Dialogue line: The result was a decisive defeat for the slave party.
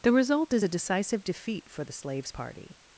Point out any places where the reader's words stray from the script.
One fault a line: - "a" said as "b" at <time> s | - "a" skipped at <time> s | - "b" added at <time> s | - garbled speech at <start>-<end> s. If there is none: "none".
- "was" said as "is" at 0.5 s
- "slave" said as "slaves" at 1.9 s